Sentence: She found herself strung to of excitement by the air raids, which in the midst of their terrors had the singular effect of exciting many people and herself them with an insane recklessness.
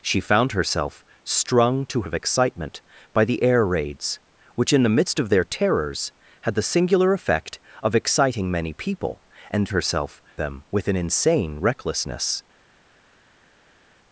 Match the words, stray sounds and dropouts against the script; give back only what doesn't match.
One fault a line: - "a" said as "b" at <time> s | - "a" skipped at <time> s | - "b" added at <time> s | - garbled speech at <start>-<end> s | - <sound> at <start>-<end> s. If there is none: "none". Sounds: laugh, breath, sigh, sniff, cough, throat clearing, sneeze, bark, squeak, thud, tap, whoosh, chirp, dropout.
none